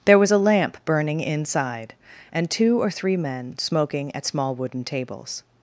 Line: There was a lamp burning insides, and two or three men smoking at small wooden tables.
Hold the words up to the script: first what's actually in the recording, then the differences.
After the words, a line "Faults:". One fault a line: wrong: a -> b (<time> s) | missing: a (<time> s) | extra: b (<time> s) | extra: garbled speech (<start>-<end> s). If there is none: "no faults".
There was a lamp burning inside, and two or three men smoking at small wooden tables.
Faults:
wrong: insides -> inside (1.2 s)